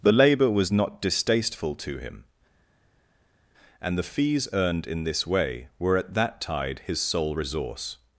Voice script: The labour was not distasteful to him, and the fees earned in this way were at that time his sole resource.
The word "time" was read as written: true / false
false